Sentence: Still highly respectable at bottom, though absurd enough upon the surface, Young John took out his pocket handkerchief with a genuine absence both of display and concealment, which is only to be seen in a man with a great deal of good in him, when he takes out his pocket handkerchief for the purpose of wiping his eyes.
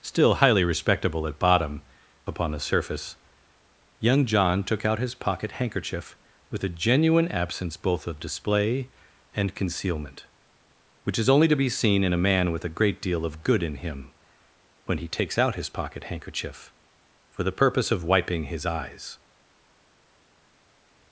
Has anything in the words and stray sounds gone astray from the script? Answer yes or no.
yes